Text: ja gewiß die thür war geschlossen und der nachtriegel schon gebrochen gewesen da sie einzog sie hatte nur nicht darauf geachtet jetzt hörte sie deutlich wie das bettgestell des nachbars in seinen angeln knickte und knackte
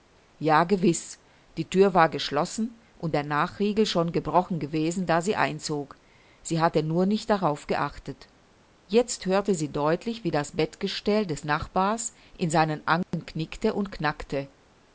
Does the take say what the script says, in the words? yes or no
yes